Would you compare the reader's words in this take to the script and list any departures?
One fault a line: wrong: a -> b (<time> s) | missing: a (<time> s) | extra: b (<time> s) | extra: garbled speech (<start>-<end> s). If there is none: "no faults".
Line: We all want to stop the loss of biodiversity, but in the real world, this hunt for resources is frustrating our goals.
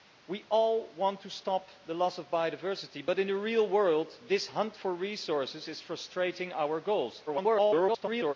extra: garbled speech (7.3-8.3 s)